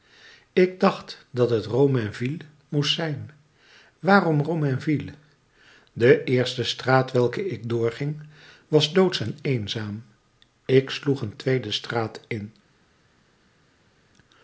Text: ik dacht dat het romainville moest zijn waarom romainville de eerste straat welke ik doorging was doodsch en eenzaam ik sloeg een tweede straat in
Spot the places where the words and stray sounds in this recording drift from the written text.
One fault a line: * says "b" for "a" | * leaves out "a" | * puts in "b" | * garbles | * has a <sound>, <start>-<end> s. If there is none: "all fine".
all fine